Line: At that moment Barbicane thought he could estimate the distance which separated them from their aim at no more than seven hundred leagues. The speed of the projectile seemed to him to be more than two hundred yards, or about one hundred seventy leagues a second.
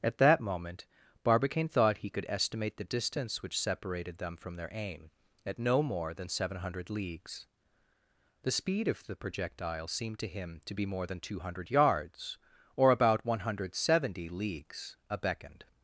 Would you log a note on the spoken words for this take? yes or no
yes